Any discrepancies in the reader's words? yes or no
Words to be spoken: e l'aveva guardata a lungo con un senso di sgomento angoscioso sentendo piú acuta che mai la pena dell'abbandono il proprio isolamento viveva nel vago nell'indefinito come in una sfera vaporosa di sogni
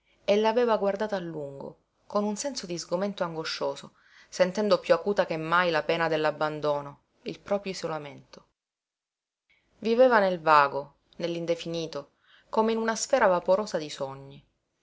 no